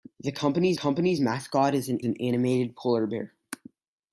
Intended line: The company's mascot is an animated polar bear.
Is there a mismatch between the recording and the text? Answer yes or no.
yes